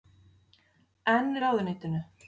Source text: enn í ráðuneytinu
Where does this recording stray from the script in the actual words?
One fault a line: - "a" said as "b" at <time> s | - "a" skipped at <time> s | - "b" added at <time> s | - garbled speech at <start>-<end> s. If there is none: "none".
none